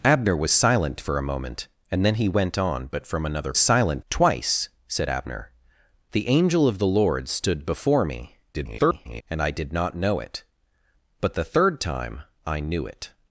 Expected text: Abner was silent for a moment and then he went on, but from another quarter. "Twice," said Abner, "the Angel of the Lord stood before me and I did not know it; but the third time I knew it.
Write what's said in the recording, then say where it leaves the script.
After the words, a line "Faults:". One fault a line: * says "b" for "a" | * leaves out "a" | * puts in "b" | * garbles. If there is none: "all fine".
Abner was silent for a moment and then he went on, but from another silent. "Twice," said Abner, "the Angel of the Lord stood before me [garbled] and I did not know it; but the third time I knew it.
Faults:
* says "silent" for "quarter"
* garbles